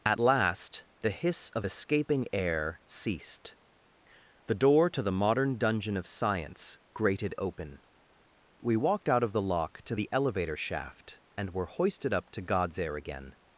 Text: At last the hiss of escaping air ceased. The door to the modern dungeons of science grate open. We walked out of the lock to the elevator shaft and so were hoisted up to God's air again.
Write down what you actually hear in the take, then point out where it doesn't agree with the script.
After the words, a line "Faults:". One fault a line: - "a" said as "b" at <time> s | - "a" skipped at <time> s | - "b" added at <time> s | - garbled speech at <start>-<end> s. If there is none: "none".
At last the hiss of escaping air ceased. The door to the modern dungeon of science grated open. We walked out of the lock to the elevator shaft and were hoisted up to God's air again.
Faults:
- "dungeons" said as "dungeon" at 5.6 s
- "grate" said as "grated" at 6.9 s
- "so" skipped at 11.5 s